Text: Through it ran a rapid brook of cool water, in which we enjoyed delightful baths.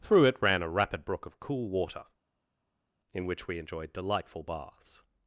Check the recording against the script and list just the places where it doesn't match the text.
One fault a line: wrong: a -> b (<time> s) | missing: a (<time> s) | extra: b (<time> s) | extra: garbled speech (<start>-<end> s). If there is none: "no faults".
no faults